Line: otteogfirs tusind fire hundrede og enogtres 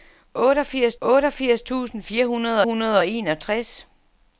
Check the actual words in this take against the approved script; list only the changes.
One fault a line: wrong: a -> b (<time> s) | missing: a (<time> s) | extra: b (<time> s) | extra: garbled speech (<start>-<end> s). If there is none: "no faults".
extra: otteogfirs (1.0 s)
extra: hundrede (2.6 s)